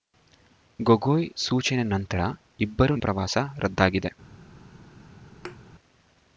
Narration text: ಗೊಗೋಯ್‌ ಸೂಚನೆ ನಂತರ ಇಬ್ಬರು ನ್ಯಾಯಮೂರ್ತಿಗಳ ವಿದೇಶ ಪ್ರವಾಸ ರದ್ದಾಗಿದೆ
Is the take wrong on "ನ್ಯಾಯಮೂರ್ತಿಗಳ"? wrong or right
wrong